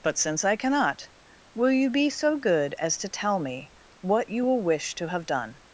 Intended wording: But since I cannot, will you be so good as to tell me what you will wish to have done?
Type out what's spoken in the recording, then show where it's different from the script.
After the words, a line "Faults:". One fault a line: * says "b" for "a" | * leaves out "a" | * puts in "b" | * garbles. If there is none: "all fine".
But since I cannot, will you be so good as to tell me what you will wish to have done?
Faults:
all fine